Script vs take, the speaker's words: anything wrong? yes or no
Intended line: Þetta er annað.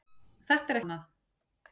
no